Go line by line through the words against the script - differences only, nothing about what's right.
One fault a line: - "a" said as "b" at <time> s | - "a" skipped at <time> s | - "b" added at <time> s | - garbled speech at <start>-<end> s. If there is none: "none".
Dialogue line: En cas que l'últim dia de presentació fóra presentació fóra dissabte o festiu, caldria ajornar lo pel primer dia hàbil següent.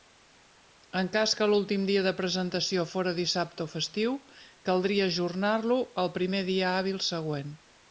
- "presentació fóra" skipped at 3.1 s
- "pel" said as "al" at 6.0 s